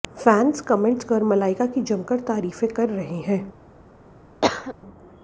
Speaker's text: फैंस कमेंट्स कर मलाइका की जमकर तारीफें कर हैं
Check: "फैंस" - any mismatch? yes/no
no